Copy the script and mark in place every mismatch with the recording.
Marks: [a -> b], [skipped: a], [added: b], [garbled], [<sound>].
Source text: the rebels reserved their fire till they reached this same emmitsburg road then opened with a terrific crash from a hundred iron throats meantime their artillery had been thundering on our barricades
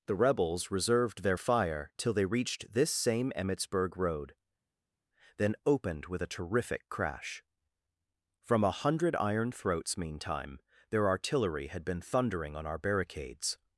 the rebels reserved their fire till they reached this same emmitsburg road then opened with a terrific crash from a hundred iron throats meantime their artillery had been thundering on our barricades